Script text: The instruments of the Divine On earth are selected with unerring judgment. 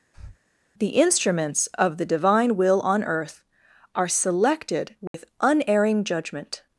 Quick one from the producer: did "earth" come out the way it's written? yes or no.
yes